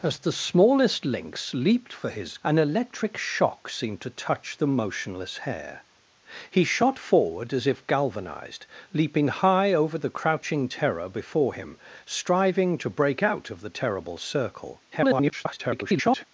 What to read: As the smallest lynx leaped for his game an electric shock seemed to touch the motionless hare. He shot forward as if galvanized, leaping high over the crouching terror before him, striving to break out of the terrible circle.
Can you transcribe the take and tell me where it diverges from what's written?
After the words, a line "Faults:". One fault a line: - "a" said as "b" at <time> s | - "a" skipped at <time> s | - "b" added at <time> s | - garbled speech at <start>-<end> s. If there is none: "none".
As the smallest lynx leaped for his an electric shock seemed to touch the motionless hare. He shot forward as if galvanized, leaping high over the crouching terror before him, striving to break out of the terrible circle. [garbled]
Faults:
- "game" skipped at 2.4 s
- garbled speech at 14.9-16.2 s